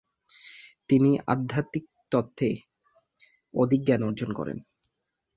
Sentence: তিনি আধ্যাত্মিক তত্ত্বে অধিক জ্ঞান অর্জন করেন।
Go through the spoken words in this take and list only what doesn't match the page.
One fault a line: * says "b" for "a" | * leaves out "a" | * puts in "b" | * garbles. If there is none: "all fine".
all fine